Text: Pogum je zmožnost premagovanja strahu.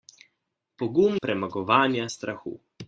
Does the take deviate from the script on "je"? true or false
true